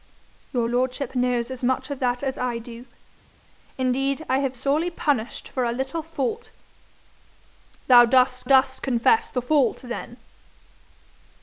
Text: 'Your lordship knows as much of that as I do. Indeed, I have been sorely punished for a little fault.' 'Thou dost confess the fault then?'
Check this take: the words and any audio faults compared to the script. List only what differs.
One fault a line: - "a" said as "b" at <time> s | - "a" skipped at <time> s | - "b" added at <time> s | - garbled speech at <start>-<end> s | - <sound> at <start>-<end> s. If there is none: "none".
- "been" skipped at 4.5 s
- "dost" added at 8.4 s